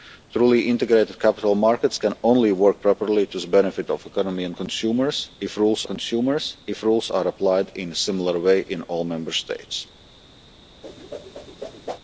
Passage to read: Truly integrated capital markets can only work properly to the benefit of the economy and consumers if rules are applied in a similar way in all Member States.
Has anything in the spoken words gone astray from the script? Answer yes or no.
yes